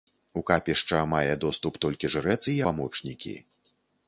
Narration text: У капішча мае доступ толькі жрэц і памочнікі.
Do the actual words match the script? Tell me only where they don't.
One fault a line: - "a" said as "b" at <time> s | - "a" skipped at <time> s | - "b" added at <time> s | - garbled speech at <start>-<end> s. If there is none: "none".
none